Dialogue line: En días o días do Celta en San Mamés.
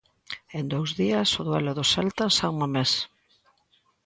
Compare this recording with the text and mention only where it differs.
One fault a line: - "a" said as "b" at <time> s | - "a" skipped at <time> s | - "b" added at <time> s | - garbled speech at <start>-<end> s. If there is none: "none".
- "dous" added at 0.7 s
- "días" said as "duelo" at 1.5 s